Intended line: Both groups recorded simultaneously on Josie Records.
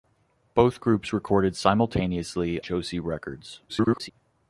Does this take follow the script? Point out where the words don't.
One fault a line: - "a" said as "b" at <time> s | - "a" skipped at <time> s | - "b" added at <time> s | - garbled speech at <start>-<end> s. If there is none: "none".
- "on" skipped at 2.6 s
- garbled speech at 3.7-4.1 s